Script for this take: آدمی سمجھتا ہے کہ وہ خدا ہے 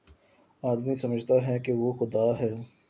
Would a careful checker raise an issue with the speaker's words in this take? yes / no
no